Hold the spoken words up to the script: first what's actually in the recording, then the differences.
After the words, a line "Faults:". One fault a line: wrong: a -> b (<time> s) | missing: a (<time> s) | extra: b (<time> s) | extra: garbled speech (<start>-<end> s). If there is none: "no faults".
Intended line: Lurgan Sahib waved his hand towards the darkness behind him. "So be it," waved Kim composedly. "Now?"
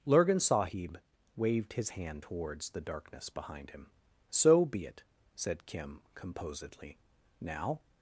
Lurgan Sahib waved his hand towards the darkness behind him. "So be it," said Kim composedly. "Now?"
Faults:
wrong: waved -> said (5.4 s)